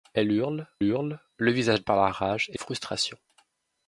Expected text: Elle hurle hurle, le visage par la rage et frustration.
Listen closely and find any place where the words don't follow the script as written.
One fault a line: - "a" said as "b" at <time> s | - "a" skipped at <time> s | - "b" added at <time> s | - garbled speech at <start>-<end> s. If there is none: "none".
none